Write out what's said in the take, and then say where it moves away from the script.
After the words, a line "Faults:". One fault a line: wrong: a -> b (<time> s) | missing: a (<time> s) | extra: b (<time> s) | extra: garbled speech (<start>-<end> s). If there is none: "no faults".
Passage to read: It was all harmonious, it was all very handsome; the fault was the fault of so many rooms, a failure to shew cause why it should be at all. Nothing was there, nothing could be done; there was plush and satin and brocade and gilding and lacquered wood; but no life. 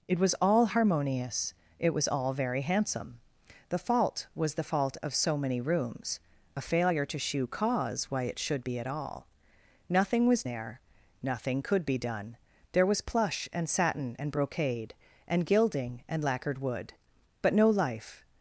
It was all harmonious, it was all very handsome; the fault was the fault of so many rooms, a failure to shew cause why it should be at all. Nothing was there, nothing could be done; there was plush and satin and brocade and gilding and lacquered wood; but no life.
Faults:
no faults